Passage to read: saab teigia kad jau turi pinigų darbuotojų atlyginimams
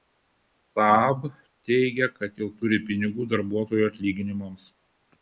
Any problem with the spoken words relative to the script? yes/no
no